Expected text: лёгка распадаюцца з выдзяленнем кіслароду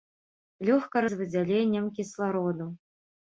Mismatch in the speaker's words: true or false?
true